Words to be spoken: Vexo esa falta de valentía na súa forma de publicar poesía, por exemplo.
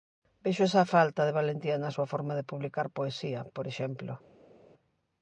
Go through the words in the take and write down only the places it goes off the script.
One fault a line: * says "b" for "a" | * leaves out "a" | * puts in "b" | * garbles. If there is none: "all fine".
all fine